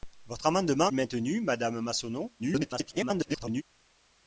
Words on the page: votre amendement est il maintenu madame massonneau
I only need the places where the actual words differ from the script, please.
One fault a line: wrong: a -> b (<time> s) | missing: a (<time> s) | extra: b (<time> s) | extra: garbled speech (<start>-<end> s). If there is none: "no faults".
missing: est (0.9 s)
extra: garbled speech (2.4-3.6 s)